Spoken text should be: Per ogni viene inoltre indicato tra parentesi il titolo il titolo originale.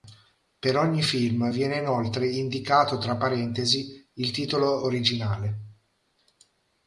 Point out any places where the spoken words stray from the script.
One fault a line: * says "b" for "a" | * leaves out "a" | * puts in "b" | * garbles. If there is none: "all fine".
* puts in "film"
* leaves out "il titolo"